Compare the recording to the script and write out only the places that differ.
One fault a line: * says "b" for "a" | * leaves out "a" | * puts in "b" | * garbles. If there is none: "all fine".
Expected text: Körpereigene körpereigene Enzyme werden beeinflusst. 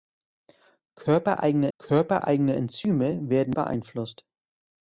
all fine